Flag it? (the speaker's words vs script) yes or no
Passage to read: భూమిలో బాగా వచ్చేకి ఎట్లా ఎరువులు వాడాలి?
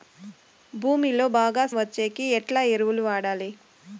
no